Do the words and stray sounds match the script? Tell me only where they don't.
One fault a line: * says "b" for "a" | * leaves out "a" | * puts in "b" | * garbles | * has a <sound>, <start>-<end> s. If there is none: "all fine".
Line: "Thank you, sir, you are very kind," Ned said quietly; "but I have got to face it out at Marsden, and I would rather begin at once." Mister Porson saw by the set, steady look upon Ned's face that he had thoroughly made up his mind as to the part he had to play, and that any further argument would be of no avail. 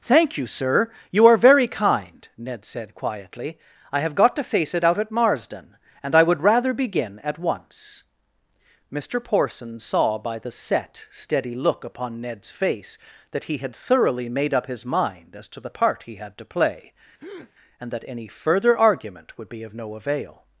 * leaves out "but"
* has a breath, 17.2-17.5 s